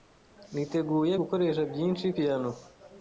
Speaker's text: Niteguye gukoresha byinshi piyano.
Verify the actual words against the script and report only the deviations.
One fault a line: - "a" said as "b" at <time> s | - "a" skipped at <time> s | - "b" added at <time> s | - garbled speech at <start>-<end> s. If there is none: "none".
none